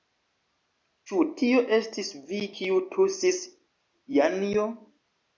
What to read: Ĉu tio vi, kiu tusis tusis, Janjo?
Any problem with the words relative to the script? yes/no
yes